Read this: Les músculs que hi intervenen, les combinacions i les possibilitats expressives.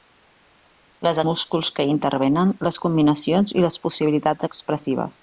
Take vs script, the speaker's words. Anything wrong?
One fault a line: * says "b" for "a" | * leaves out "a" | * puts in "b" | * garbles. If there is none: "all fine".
all fine